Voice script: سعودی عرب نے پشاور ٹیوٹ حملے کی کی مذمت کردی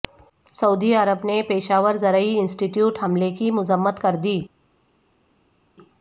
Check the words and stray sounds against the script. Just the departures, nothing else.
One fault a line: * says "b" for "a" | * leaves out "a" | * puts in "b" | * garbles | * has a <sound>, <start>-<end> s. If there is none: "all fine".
* puts in "زرعی انسٹی"
* leaves out "کی"